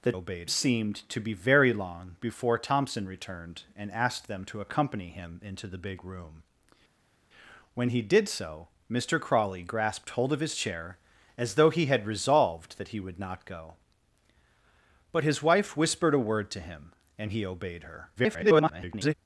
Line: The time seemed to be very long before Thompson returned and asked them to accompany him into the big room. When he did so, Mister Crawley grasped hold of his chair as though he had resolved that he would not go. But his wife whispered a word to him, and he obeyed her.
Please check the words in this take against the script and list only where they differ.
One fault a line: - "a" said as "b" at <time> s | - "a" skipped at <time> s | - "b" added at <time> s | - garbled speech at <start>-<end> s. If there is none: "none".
- "time" said as "obeyed" at 0.1 s
- garbled speech at 18.2-19.1 s